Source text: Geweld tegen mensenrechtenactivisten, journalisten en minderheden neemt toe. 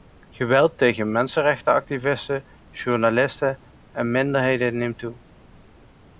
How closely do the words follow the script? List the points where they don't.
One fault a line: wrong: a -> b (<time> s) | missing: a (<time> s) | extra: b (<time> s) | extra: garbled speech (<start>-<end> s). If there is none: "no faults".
no faults